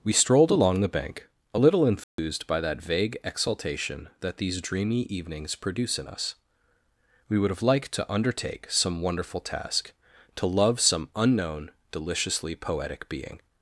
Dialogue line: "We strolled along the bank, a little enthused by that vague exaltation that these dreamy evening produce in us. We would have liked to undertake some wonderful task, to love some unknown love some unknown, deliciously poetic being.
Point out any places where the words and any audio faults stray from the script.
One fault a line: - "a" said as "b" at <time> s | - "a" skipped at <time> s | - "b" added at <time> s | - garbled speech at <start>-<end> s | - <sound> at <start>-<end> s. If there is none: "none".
- dropout at 2.0-2.2 s
- "evening" said as "evenings" at 5.0 s
- "love some unknown" skipped at 11.7 s